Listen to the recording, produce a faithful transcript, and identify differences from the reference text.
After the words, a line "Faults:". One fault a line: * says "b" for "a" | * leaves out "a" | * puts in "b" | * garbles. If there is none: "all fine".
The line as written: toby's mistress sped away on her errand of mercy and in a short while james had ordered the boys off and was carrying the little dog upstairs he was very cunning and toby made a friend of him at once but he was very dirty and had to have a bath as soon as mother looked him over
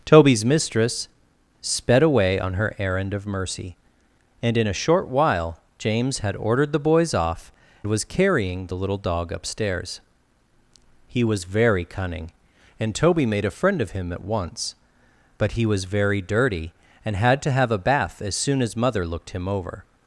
toby's mistress sped away on her errand of mercy and in a short while james had ordered the boys off was carrying the little dog upstairs he was very cunning and toby made a friend of him at once but he was very dirty and had to have a bath as soon as mother looked him over
Faults:
* leaves out "and"